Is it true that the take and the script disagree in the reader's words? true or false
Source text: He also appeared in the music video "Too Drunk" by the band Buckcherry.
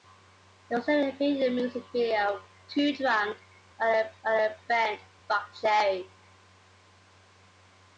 true